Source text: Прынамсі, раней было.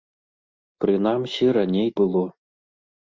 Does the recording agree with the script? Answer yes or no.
yes